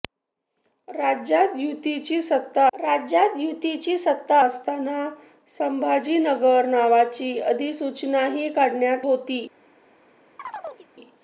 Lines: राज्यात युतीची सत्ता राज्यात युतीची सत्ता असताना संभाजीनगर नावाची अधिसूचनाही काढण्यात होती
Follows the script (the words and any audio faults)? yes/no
no